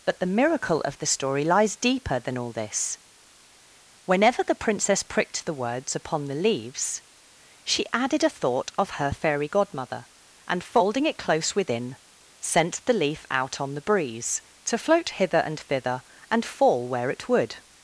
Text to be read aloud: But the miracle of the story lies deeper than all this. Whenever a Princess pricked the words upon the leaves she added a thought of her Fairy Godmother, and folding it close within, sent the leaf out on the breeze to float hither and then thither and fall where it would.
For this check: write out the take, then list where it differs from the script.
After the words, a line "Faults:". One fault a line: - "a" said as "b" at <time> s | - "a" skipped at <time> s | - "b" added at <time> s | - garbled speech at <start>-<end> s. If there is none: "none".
But the miracle of the story lies deeper than all this. Whenever the Princess pricked the words upon the leaves she added a thought of her Fairy Godmother, and folding it close within, sent the leaf out on the breeze to float hither and thither and fall where it would.
Faults:
- "a" said as "the" at 4.4 s
- "then" skipped at 15.6 s